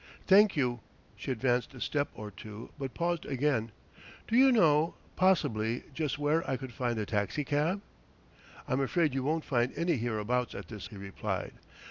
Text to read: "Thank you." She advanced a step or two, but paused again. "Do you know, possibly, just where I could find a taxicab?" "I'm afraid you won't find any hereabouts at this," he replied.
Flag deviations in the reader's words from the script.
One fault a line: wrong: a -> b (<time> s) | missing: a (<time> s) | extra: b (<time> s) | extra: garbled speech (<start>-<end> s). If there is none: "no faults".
no faults